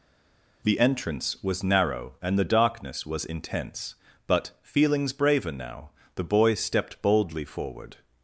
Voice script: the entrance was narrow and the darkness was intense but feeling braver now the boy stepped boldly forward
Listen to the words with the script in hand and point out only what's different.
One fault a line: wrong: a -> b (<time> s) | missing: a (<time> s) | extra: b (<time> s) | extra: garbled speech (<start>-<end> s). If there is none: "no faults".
wrong: feeling -> feelings (4.6 s)